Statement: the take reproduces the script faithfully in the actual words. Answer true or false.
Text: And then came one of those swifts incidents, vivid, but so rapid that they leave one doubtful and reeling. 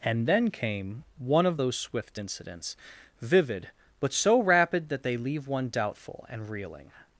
false